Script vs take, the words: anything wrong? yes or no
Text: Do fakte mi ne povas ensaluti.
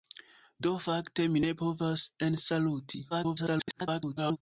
yes